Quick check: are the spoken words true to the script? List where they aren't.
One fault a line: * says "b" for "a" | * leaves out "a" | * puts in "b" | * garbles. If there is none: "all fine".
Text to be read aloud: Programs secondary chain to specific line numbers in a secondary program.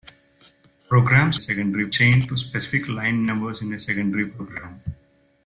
all fine